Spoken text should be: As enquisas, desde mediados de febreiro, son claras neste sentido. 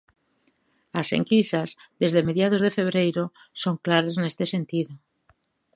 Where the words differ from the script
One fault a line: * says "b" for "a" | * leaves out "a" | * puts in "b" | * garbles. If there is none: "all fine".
all fine